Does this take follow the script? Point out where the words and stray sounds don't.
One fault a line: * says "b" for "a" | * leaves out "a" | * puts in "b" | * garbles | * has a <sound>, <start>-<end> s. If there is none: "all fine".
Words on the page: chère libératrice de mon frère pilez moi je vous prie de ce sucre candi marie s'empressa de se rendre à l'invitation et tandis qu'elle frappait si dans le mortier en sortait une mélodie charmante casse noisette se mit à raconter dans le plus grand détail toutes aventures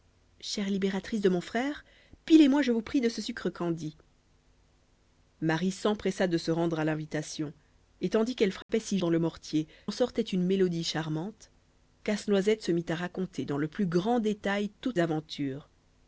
* has a dropout, 8.6-8.7 s